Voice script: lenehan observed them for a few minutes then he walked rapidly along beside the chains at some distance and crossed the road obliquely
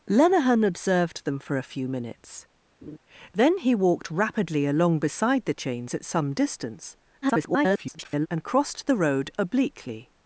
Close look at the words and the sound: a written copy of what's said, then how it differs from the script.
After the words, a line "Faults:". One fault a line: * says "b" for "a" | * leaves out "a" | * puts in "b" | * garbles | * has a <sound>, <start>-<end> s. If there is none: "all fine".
lenehan observed them for a few minutes then he walked rapidly along beside the chains at some distance [garbled] and crossed the road obliquely
Faults:
* has a laugh, 2.8-3.0 s
* garbles